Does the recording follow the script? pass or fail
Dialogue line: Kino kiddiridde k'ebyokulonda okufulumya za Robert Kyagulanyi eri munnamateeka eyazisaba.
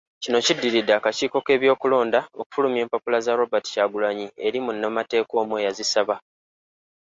fail